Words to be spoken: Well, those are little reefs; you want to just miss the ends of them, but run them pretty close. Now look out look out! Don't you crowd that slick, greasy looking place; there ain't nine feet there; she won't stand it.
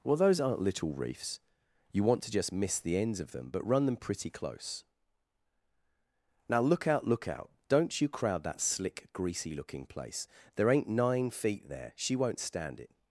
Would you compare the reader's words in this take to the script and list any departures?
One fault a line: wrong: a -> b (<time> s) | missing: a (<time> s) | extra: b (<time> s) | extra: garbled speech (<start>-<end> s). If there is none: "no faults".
wrong: are -> aren't (0.4 s)